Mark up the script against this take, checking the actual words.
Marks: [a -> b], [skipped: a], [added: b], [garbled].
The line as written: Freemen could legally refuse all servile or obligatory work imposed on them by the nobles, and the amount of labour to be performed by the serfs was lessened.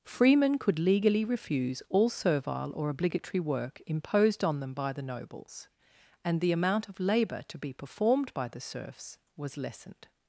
Freemen could legally refuse all servile or obligatory work imposed on them by the nobles, and the amount of labour to be performed by the serfs was lessened.